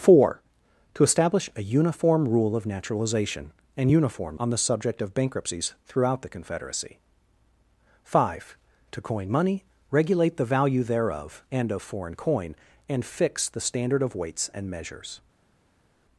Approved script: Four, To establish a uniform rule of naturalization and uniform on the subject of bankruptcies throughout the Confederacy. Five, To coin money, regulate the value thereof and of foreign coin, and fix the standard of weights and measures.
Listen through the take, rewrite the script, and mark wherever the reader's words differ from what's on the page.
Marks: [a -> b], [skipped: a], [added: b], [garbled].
Four, To establish a uniform rule of naturalization and uniform on the subject of bankruptcies throughout the Confederacy. Five, To coin money, regulate the value thereof and of foreign coin, and fix the standard of weights and measures.